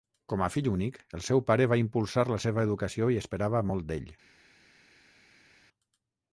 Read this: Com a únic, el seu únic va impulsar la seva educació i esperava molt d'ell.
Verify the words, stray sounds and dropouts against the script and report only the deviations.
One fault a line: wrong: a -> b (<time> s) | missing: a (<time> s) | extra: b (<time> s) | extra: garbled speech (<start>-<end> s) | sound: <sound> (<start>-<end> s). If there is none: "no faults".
extra: fill (0.5 s)
wrong: únic -> pare (1.5 s)